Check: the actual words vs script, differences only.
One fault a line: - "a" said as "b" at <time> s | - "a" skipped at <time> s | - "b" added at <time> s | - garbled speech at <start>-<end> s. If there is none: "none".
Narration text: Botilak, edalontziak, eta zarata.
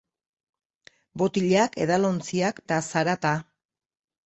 none